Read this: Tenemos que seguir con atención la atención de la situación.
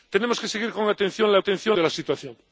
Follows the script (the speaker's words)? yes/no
yes